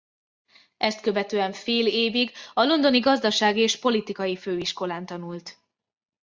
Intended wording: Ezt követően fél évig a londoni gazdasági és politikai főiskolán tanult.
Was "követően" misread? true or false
false